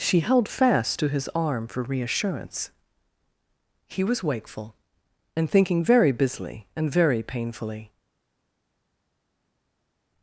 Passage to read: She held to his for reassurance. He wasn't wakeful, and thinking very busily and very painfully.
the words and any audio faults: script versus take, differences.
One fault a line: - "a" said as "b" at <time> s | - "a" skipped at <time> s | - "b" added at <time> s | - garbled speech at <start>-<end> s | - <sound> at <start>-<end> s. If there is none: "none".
- "fast" added at 0.5 s
- "arm" added at 1.4 s
- "wasn't" said as "was" at 4.0 s